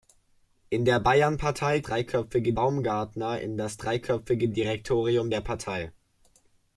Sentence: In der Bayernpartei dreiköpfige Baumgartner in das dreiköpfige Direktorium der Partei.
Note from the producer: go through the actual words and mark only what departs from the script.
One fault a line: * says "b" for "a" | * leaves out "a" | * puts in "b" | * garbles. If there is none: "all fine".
all fine